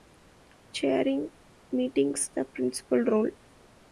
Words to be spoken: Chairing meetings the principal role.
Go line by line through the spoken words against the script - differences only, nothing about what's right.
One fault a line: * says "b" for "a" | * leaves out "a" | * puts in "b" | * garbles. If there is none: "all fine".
all fine